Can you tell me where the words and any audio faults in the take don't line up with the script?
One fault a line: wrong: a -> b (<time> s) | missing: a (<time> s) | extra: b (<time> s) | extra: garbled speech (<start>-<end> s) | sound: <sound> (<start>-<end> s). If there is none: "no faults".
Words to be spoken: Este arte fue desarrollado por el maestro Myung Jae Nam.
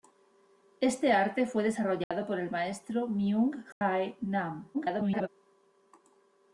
sound: dropout (2.0-2.1 s)
sound: dropout (3.7-3.8 s)
extra: garbled speech (4.7-5.3 s)